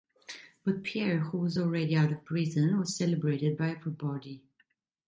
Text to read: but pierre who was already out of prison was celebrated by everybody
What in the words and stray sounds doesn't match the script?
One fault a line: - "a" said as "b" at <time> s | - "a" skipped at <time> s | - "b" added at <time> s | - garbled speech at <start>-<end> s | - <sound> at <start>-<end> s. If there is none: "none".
none